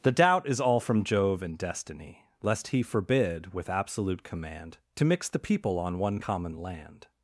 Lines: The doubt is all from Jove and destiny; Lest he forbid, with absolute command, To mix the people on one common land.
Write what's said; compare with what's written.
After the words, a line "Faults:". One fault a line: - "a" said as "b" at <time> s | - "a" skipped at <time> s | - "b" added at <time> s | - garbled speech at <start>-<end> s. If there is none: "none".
The doubt is all from Jove and destiny; Lest he forbid, with absolute command, To mix the people on one common land.
Faults:
none